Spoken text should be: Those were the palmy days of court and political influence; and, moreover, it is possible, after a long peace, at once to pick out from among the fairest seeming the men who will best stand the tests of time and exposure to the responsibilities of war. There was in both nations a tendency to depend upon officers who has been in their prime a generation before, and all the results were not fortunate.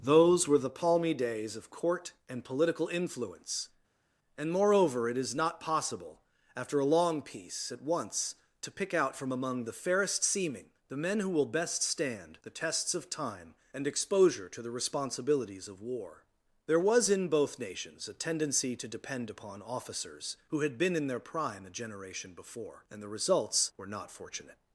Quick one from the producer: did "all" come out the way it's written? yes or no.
no